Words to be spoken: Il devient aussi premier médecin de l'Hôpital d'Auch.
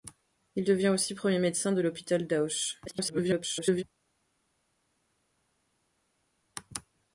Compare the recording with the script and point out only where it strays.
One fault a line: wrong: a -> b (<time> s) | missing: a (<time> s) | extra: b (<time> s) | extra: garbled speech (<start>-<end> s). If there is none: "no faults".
extra: garbled speech (2.9-3.8 s)